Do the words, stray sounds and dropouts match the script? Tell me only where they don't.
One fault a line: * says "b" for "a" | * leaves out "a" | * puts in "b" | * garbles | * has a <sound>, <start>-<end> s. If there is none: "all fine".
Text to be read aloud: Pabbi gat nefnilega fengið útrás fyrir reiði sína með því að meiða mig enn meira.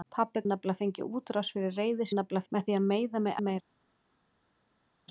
* leaves out "gat"
* says "nefnilega" for "sína"
* leaves out "enn"